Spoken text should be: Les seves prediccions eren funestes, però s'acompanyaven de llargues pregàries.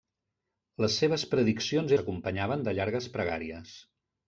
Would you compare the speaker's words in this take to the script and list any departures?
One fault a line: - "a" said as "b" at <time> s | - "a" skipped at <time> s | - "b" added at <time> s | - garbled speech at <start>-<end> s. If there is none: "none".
- "eren funestes però" skipped at 1.9 s